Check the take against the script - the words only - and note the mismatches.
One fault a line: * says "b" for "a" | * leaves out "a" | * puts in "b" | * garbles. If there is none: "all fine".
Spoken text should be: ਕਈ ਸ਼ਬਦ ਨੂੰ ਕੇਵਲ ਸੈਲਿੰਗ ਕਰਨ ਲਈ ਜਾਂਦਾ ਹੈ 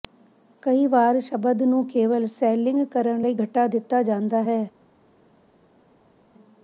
* puts in "ਵਾਰ"
* puts in "ਘਟਾ ਦਿੱਤਾ"